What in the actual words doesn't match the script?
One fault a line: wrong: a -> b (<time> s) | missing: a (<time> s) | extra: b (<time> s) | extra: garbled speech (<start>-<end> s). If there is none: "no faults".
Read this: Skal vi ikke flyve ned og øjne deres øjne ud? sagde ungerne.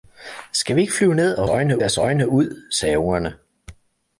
no faults